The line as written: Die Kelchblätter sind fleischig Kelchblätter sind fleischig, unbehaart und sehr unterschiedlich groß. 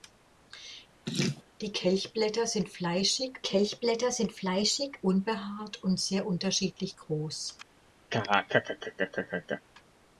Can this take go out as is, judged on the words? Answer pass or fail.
pass